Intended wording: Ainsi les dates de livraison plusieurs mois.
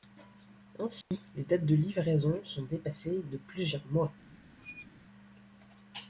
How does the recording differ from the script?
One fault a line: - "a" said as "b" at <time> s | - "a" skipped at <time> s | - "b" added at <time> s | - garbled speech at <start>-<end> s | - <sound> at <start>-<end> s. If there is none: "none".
- dropout at 1.0-1.1 s
- "sont dépassées de" added at 2.4 s
- squeak at 4.6-4.9 s